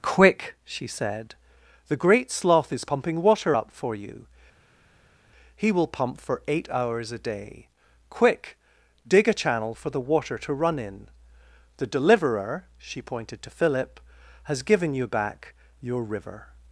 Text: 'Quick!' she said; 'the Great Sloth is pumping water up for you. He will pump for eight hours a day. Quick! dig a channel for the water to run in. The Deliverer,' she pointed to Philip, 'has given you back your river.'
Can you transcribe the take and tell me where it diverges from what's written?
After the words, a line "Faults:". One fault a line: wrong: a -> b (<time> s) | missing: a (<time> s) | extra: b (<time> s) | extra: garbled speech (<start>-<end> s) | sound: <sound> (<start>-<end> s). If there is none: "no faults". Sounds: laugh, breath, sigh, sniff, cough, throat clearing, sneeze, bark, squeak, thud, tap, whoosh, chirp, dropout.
'Quick!' she said; 'the Great Sloth is pumping water up for you. He will pump for eight hours a day. Quick! dig a channel for the water to run in. The Deliverer,' she pointed to Philip, 'has given you back your river.'
Faults:
no faults